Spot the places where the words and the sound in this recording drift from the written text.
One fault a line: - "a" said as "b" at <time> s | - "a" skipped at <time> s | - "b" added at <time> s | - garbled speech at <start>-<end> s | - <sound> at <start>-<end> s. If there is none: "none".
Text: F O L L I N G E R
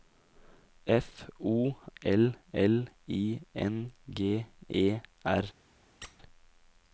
- squeak at 6.0-6.2 s